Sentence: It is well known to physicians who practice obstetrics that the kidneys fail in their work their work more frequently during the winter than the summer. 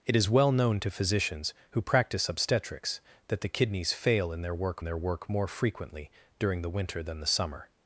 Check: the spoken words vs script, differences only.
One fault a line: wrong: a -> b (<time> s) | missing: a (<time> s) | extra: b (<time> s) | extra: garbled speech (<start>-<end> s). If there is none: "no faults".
no faults